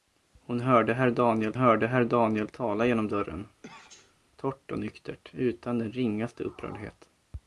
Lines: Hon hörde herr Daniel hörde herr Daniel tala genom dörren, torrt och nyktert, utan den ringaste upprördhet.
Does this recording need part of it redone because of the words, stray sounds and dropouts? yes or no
yes